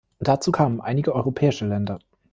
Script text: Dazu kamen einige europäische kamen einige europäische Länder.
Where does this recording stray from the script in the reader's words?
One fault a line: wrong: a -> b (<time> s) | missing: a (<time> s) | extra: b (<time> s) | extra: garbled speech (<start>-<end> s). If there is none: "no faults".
missing: kamen einige europäische (1.7 s)